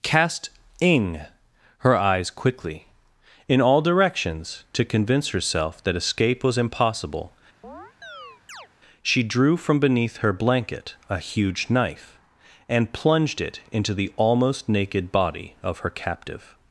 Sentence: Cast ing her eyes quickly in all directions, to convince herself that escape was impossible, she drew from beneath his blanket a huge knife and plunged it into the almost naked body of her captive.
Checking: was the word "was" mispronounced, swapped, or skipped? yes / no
no